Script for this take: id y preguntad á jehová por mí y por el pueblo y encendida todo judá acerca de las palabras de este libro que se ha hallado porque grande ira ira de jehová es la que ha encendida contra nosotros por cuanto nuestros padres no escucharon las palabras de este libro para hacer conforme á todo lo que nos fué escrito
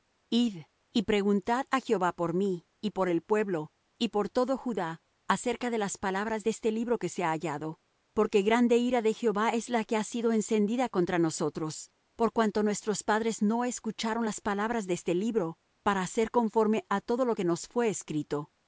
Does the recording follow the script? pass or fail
fail